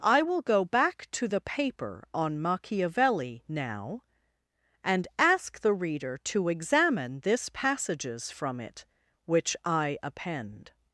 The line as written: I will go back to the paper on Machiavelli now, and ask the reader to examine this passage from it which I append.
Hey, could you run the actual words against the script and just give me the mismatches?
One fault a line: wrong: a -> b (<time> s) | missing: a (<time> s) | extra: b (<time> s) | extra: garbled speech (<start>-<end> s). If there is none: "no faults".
wrong: passage -> passages (7.5 s)